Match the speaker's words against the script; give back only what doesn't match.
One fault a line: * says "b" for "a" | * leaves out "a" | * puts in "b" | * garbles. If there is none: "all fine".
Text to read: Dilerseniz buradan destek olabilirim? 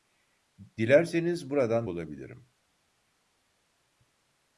* leaves out "destek"